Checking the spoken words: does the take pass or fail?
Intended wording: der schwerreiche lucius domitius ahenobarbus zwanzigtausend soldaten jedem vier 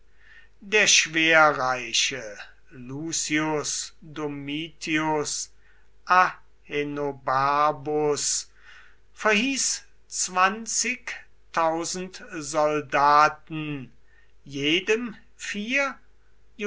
fail